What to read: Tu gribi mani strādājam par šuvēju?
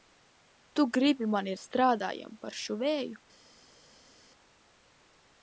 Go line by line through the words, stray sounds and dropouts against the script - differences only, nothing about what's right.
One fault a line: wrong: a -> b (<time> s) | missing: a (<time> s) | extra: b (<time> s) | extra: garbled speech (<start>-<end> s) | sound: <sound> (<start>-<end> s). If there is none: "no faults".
no faults